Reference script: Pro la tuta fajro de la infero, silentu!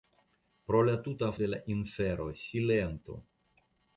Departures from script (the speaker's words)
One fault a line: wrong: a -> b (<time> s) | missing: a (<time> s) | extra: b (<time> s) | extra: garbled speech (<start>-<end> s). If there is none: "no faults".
missing: fajro (1.3 s)